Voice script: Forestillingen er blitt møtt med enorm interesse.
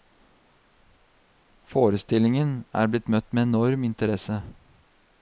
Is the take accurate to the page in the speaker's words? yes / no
yes